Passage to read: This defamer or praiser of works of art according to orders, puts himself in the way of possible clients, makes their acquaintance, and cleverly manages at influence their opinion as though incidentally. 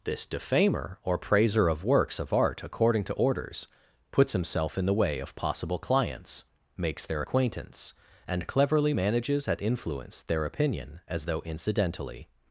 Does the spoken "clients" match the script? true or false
true